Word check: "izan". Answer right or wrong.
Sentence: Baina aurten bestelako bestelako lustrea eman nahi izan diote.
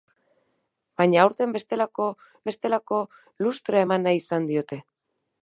right